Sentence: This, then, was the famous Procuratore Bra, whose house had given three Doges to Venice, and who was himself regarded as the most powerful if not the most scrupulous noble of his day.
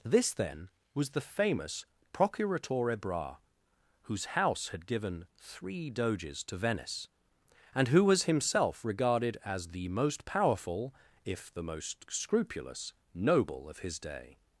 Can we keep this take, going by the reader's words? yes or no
no